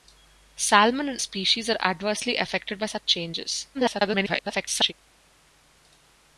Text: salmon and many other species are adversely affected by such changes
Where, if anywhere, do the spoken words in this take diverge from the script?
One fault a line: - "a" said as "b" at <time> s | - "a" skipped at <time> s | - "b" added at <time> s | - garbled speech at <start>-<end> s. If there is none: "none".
- "many other" skipped at 1.2 s
- garbled speech at 3.7-4.9 s